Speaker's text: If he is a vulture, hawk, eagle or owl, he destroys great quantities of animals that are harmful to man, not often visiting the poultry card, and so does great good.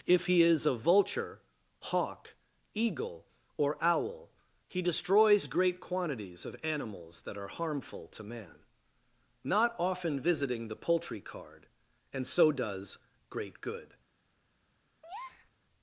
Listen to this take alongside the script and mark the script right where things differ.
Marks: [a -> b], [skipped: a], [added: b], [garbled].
If he is a vulture, hawk, eagle or owl, he destroys great quantities of animals that are harmful to man, not often visiting the poultry card, and so does great good.